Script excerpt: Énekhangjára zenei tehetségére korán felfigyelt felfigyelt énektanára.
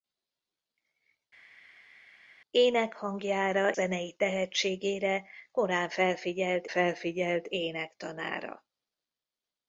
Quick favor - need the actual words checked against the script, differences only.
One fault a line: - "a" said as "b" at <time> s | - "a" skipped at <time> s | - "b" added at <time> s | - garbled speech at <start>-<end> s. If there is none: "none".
none